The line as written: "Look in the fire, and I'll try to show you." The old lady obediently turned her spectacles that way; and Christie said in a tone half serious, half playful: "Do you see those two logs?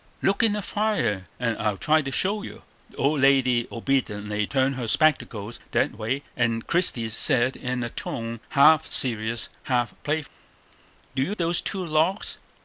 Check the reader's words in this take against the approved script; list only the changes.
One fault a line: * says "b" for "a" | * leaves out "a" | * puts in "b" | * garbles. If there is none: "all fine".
* leaves out "see"